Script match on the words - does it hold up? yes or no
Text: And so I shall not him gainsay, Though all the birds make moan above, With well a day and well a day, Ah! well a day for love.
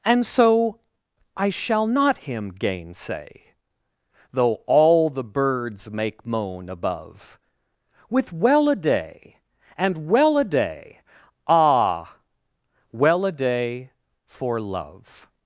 yes